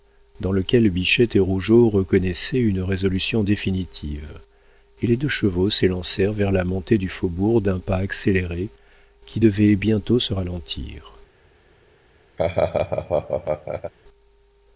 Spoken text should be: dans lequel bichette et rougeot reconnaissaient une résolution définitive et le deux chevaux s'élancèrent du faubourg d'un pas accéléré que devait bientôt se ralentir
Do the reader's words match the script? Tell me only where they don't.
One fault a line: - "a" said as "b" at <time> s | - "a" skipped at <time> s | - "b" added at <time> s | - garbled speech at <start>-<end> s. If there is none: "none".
- "le" said as "les" at 5.0 s
- "vers la montée" added at 6.3 s
- "que" said as "qui" at 9.3 s